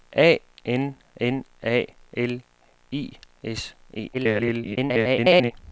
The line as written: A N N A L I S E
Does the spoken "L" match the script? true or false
true